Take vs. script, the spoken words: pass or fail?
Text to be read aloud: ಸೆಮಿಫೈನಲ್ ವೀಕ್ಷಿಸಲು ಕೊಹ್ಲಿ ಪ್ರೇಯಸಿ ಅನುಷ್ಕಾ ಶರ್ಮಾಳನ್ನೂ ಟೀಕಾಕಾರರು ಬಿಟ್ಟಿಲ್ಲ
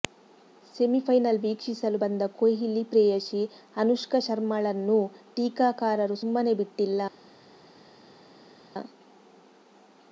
fail